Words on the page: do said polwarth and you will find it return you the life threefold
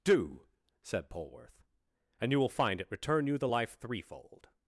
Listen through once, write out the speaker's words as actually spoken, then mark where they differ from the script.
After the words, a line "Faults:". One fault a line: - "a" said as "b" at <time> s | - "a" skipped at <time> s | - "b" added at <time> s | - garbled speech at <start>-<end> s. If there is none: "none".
do said polwarth and you will find it return you the life threefold
Faults:
none